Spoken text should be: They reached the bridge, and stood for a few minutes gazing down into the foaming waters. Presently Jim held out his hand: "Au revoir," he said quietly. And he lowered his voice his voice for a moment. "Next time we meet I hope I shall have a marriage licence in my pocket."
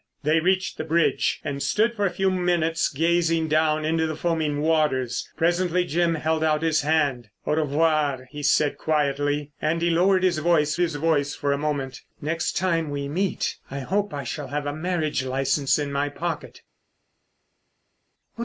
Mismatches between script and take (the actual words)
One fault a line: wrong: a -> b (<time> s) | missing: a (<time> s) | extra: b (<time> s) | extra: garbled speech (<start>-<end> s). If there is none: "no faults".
no faults